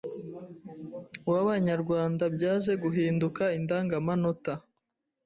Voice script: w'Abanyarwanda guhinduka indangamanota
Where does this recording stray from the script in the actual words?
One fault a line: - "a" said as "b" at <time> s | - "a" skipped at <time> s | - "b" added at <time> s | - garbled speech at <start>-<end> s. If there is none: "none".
- "byaje" added at 2.4 s